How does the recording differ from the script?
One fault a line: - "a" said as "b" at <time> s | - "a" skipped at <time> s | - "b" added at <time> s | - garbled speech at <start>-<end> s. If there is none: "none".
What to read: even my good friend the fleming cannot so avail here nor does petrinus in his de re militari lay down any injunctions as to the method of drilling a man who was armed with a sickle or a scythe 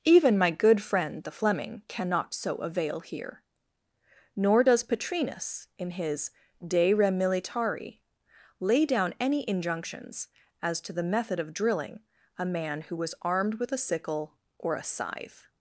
none